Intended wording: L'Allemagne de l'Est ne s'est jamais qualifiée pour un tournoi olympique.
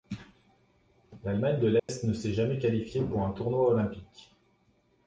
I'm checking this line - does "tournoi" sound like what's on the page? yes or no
yes